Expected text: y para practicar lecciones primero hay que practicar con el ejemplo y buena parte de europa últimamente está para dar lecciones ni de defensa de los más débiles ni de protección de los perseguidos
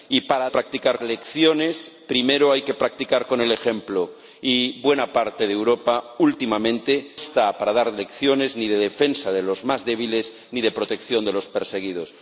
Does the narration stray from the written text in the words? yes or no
no